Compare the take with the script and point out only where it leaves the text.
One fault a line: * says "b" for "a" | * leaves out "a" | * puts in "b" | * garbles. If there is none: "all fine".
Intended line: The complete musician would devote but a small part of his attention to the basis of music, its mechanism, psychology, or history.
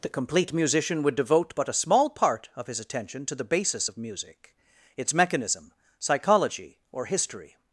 all fine